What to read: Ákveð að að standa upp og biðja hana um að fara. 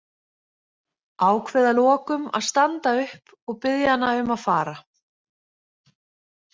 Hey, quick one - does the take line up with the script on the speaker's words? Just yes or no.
no